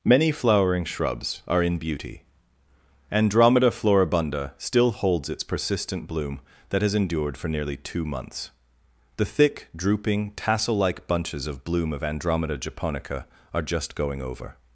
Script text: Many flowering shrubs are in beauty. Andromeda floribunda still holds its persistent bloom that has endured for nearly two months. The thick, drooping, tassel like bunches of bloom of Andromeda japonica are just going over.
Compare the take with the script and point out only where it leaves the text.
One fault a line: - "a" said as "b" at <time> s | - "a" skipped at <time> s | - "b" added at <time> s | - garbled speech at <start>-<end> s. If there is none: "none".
none